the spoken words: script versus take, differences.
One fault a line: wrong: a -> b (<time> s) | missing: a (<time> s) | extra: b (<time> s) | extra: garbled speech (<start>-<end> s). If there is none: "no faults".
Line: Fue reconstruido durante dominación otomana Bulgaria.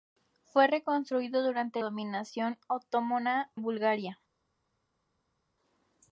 no faults